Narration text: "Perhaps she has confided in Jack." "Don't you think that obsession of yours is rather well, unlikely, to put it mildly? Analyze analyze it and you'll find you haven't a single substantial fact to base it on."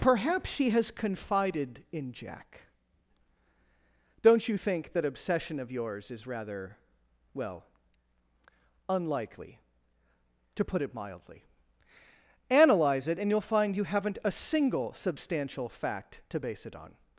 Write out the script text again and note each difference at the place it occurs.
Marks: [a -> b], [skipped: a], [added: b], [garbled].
"Perhaps she has confided in Jack." "Don't you think that obsession of yours is rather well, unlikely, to put it mildly? Analyze [skipped: analyze] it and you'll find you haven't a single substantial fact to base it on."